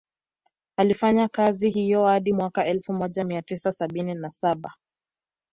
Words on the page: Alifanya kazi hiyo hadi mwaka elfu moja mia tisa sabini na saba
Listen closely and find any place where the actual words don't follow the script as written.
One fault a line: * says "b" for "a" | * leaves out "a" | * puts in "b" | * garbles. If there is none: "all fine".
all fine